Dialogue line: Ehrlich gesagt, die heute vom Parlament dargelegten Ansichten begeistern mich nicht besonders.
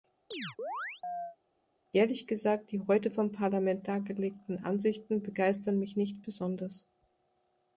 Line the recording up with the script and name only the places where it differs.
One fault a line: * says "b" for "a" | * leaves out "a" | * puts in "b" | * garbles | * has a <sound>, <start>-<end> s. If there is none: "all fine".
* has a chirp, 0.3-1.4 s